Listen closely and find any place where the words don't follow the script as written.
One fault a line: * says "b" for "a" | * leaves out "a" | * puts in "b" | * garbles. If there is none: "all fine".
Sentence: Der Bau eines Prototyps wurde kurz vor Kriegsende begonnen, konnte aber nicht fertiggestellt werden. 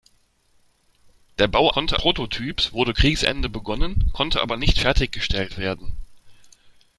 * says "konnte" for "eines"
* leaves out "kurz vor"